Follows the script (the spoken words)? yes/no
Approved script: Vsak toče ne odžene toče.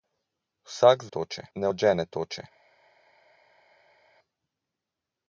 yes